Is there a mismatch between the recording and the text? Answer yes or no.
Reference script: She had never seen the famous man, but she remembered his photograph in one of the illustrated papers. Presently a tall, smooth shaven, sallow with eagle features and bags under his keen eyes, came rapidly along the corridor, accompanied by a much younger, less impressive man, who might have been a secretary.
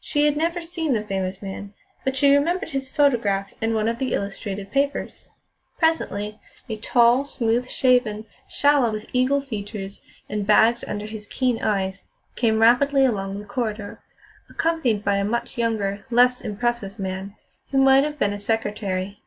no